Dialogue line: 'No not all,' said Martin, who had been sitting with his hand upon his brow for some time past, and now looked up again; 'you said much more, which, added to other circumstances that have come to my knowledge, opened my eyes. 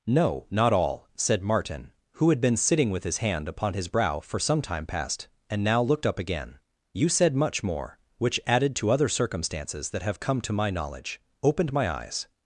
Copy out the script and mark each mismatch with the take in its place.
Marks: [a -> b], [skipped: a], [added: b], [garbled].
'No not all,' said Martin, who had been sitting with his hand upon his brow for some time past, and now looked up again; 'you said much more, which, added to other circumstances that have come to my knowledge, opened my eyes.